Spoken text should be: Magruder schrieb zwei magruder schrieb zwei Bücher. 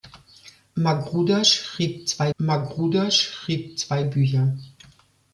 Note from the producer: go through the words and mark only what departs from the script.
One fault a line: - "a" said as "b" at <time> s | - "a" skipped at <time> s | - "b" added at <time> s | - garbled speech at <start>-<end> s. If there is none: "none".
none